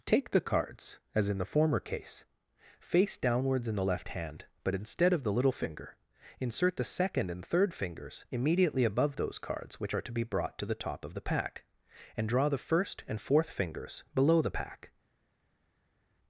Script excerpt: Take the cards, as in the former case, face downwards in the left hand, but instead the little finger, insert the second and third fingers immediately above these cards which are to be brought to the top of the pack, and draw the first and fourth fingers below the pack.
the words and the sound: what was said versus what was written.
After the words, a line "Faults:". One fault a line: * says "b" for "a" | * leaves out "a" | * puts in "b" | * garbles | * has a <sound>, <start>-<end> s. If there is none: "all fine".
Take the cards, as in the former case, face downwards in the left hand, but instead of the little finger, insert the second and third fingers immediately above those cards which are to be brought to the top of the pack, and draw the first and fourth fingers below the pack.
Faults:
* puts in "of"
* says "those" for "these"